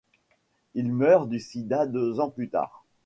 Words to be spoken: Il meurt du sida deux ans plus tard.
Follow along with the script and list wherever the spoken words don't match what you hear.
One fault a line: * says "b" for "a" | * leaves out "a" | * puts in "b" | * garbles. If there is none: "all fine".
all fine